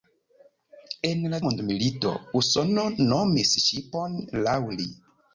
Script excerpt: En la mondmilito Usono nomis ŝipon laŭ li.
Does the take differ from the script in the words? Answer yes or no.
no